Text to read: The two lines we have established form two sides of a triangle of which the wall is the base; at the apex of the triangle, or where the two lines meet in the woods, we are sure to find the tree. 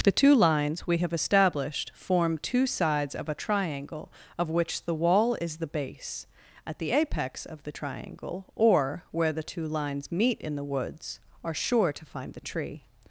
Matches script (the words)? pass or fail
fail